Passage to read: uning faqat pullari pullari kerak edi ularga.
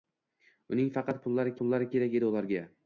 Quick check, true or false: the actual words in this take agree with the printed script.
true